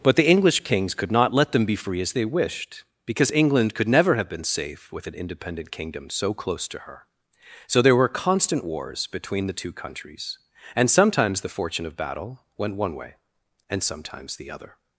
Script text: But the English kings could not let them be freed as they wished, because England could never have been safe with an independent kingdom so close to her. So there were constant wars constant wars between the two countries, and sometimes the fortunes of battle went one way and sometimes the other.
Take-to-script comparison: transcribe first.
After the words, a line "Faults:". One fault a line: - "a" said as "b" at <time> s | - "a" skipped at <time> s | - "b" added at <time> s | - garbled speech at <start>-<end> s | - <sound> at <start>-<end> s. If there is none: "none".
But the English kings could not let them be free as they wished, because England could never have been safe with an independent kingdom so close to her. So there were constant wars between the two countries, and sometimes the fortune of battle went one way and sometimes the other.
Faults:
- "freed" said as "free" at 1.8 s
- "constant wars" skipped at 9.1 s
- "fortunes" said as "fortune" at 11.6 s